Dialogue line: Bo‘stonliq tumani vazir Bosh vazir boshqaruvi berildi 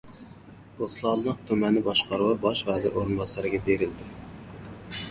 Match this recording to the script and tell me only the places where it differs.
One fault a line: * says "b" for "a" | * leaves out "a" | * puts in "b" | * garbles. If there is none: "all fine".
* says "boshqaruvi" for "vazir"
* says "o‘rinbosariga" for "boshqaruvi"